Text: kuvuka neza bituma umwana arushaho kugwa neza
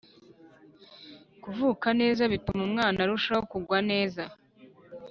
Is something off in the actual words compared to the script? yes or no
no